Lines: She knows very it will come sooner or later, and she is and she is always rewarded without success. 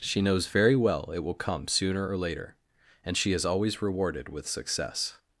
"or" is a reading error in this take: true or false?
false